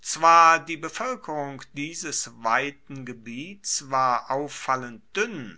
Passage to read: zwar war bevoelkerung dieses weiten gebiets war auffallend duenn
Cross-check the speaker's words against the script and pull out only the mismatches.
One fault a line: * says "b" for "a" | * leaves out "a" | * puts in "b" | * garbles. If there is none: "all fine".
* says "die" for "war"